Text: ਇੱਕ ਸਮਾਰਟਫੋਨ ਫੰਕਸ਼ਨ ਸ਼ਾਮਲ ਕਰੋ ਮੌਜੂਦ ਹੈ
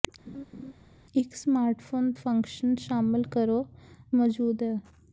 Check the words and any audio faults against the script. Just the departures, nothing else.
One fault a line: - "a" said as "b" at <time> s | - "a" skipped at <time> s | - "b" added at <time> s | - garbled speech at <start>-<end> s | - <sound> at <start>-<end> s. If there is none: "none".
- laugh at 0.3-0.7 s